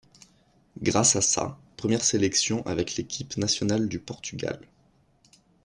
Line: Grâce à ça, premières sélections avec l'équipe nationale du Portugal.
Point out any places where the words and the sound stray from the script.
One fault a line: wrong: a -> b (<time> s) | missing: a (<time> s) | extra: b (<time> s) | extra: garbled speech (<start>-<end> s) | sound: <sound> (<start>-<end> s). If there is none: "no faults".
no faults